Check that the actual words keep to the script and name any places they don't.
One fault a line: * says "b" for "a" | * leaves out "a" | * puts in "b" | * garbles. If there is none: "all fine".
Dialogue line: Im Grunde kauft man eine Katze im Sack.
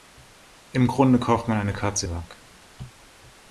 * leaves out "im"